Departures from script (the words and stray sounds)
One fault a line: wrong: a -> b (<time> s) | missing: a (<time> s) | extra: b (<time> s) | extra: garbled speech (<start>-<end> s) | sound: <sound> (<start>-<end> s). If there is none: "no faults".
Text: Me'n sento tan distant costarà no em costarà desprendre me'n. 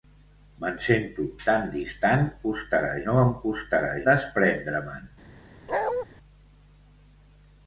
sound: bark (5.7-6.1 s)